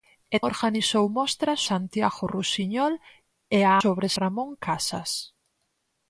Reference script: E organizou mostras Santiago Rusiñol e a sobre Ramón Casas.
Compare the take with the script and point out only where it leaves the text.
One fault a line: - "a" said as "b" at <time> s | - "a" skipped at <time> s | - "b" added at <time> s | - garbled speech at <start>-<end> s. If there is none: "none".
none